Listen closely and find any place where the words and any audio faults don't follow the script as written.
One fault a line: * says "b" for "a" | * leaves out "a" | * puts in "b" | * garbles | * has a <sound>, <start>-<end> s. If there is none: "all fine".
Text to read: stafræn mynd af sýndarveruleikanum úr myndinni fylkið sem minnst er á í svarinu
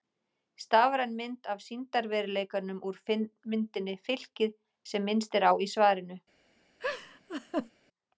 * has a laugh, 6.8-7.7 s